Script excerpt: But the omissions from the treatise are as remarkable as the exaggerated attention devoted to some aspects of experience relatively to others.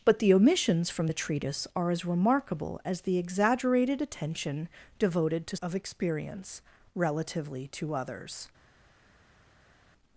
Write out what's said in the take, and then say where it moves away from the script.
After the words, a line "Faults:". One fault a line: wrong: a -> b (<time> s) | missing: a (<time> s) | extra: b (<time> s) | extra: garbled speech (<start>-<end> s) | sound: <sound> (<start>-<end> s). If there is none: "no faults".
But the omissions from the treatise are as remarkable as the exaggerated attention devoted to of experience relatively to others.
Faults:
missing: some aspects (5.6 s)